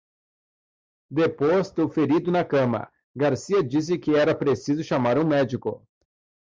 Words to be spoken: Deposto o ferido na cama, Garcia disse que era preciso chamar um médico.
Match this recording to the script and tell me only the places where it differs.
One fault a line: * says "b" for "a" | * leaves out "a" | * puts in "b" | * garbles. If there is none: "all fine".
all fine